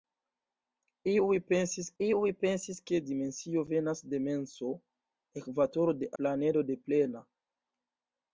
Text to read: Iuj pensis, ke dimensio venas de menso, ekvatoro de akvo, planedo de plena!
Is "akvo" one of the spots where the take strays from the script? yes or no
yes